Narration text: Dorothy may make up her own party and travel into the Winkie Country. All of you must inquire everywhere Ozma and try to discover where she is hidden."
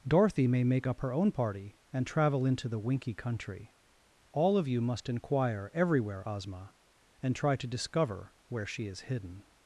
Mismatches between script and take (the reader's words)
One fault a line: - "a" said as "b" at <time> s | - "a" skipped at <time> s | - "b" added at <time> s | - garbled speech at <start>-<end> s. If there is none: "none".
none